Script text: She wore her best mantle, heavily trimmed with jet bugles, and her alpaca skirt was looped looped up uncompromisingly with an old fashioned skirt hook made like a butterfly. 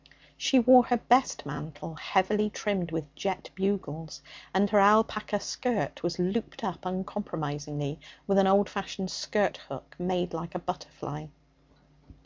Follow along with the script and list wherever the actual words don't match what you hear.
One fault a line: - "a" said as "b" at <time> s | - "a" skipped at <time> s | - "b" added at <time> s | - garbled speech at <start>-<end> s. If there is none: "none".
- "looped" skipped at 6.6 s